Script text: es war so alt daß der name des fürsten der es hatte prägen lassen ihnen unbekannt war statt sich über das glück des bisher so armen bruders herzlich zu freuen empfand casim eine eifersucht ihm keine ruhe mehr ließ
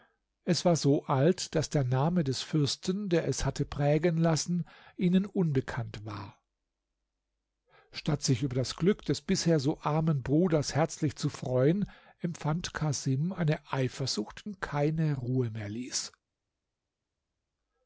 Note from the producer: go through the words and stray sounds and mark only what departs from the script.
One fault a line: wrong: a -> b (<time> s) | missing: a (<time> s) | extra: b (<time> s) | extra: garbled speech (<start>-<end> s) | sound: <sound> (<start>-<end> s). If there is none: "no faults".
no faults